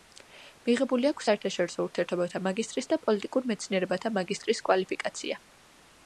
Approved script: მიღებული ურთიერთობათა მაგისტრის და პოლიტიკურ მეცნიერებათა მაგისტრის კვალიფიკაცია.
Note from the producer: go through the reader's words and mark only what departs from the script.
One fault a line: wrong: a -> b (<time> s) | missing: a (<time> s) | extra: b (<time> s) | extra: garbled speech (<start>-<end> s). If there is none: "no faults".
extra: აქვს საერთაშორისო (1.1 s)